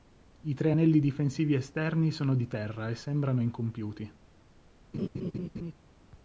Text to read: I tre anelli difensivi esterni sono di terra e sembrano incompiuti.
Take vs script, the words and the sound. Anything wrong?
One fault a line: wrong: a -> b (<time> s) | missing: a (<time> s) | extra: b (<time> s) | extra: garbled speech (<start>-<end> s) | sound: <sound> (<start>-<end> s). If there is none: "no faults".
sound: laugh (4.9-5.7 s)